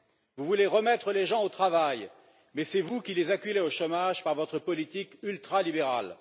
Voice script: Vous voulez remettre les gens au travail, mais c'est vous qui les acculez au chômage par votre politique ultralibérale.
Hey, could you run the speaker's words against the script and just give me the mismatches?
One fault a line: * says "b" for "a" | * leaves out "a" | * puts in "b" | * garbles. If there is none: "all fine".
all fine